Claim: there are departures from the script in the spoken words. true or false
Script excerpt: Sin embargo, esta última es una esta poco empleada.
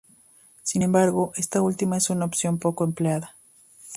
true